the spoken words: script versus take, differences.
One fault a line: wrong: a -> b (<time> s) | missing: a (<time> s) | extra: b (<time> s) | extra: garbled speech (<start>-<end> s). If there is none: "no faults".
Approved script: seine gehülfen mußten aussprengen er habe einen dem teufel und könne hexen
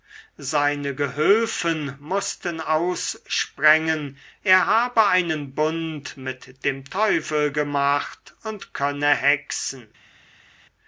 extra: bund mit (5.5 s)
extra: gemacht (7.5 s)